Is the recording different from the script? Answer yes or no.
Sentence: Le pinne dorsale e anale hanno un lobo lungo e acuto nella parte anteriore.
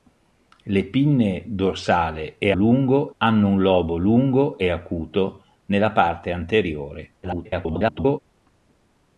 yes